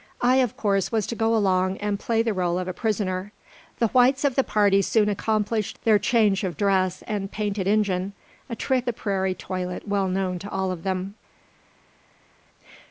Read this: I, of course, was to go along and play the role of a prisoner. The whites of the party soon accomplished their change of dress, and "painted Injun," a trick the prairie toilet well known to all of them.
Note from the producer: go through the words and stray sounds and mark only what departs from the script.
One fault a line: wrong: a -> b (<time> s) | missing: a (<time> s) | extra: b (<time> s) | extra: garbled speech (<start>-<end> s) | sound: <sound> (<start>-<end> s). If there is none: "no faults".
no faults